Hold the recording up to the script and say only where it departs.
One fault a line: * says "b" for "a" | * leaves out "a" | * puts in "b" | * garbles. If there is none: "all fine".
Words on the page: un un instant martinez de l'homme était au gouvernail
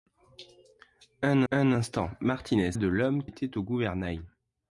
all fine